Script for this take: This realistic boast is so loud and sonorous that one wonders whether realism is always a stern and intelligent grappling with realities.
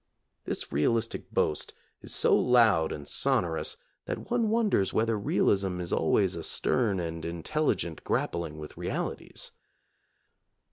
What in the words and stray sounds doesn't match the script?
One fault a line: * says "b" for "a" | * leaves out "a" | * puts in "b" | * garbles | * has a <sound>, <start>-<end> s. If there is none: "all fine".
all fine